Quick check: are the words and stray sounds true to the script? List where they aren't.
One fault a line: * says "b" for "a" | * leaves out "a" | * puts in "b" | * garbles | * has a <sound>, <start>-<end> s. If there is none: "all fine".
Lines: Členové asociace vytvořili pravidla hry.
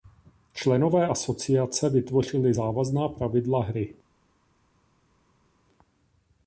* puts in "závazná"